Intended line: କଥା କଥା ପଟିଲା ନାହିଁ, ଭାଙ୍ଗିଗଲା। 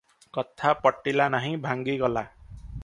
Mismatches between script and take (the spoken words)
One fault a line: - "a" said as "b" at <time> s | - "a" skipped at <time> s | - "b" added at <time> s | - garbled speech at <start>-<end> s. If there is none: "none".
- "କଥା" skipped at 0.7 s